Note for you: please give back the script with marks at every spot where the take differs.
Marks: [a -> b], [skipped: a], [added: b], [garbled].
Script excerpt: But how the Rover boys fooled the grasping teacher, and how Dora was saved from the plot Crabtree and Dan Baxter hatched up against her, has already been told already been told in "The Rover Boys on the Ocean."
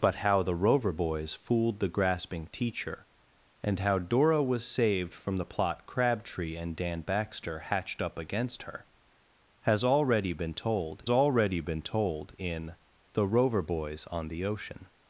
But how the Rover boys fooled the grasping teacher, and how Dora was saved from the plot Crabtree and Dan Baxter hatched up against her, has already been told already been told in "The Rover Boys on the Ocean."